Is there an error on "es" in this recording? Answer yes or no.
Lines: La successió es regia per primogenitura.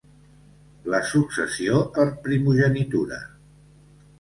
yes